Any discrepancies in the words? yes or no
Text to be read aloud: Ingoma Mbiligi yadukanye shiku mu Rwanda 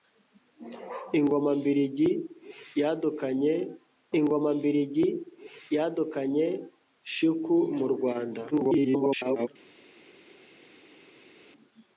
yes